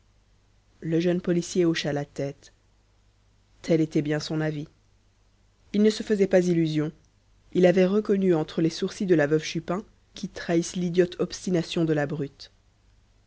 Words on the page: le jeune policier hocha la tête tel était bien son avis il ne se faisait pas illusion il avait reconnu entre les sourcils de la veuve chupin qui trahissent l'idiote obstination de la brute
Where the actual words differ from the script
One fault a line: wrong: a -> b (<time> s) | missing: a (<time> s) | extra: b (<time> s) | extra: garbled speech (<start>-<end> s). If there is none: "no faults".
no faults